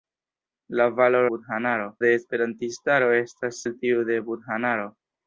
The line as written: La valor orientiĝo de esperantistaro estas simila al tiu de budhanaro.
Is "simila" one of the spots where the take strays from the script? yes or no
yes